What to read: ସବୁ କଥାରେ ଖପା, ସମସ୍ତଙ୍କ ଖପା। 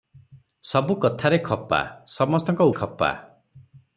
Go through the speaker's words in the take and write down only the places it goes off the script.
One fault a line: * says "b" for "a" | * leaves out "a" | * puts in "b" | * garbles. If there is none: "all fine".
all fine